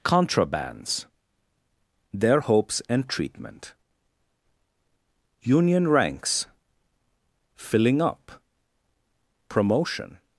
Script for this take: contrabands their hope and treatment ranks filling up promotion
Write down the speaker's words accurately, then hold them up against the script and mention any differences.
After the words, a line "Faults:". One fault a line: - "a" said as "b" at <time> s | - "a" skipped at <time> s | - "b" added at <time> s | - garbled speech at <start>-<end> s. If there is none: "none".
contrabands their hopes and treatment union ranks filling up promotion
Faults:
- "hope" said as "hopes" at 2.4 s
- "union" added at 5.4 s